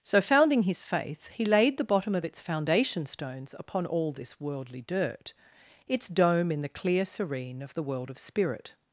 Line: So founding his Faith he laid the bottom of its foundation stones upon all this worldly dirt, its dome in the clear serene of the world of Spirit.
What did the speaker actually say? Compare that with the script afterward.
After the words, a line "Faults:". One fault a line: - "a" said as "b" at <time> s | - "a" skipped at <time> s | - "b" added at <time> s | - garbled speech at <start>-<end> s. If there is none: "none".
So founding his Faith he laid the bottom of its foundation stones upon all this worldly dirt, its dome in the clear serene of the world of Spirit.
Faults:
none